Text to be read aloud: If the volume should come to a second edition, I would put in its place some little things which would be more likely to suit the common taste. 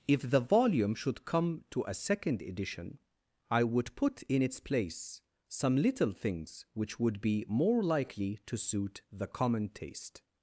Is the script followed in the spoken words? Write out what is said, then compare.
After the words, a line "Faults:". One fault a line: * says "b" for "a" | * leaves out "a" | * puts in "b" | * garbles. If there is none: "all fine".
If the volume should come to a second edition, I would put in its place some little things which would be more likely to suit the common taste.
Faults:
all fine